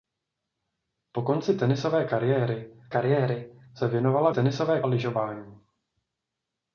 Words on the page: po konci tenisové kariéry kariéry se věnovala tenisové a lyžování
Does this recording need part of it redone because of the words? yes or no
no